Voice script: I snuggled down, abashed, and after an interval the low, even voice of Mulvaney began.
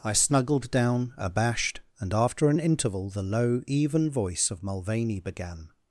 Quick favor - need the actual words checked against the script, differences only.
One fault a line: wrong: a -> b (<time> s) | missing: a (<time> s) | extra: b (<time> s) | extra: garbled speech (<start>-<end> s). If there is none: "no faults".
no faults